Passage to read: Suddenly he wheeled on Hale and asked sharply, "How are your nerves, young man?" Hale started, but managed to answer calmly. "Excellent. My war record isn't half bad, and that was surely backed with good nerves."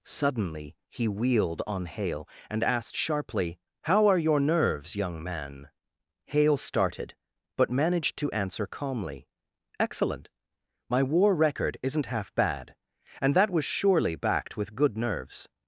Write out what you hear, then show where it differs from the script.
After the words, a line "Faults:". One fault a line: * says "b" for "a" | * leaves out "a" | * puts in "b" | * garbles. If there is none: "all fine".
Suddenly he wheeled on Hale and asked sharply, "How are your nerves, young man?" Hale started, but managed to answer calmly. "Excellent. My war record isn't half bad, and that was surely backed with good nerves."
Faults:
all fine